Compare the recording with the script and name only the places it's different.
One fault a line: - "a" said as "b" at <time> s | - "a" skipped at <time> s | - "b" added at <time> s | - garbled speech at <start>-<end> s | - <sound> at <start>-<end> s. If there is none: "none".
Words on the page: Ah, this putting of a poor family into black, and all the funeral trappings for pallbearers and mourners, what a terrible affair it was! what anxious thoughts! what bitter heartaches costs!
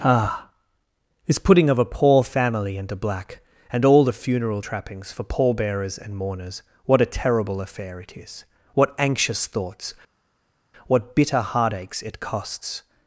- "was" said as "is" at 8.2 s
- "it" added at 12.0 s